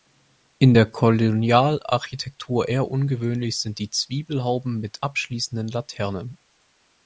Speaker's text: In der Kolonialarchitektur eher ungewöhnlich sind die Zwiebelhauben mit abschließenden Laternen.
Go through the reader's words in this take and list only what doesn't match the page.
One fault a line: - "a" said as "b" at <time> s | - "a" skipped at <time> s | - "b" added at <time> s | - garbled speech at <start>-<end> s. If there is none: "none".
none